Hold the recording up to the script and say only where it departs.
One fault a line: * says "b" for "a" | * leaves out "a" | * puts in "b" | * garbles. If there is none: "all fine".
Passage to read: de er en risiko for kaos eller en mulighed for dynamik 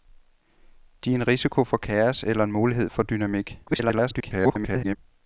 * garbles